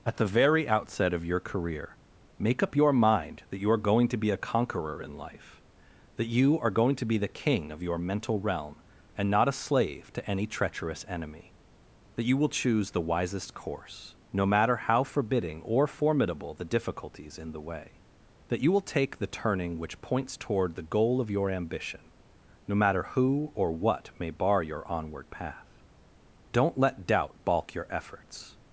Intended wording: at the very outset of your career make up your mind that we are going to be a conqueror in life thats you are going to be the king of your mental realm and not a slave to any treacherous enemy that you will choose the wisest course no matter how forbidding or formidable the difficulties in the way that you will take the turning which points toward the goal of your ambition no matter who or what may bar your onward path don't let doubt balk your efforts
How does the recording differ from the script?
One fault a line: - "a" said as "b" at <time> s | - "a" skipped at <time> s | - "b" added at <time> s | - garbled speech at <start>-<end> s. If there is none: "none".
- "we" said as "you" at 3.6 s
- "thats" said as "that" at 6.1 s